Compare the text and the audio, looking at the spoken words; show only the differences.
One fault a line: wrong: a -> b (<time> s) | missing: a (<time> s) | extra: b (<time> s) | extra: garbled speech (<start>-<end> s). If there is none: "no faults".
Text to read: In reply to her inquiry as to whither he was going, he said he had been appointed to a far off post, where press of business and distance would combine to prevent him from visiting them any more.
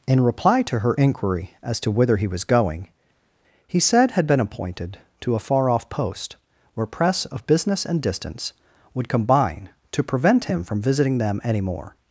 missing: he (4.1 s)